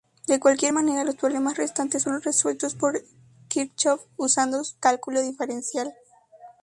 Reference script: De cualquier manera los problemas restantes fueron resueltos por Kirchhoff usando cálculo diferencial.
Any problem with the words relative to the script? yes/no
no